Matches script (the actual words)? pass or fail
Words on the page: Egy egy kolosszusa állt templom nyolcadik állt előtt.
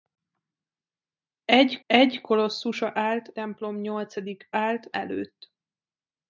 pass